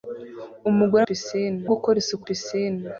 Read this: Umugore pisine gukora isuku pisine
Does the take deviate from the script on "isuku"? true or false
false